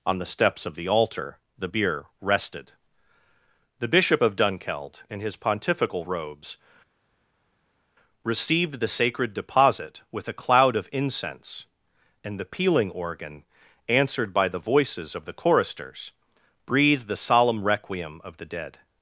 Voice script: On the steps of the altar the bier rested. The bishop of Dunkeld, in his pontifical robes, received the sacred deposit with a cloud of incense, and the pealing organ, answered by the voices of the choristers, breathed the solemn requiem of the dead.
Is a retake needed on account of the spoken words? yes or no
no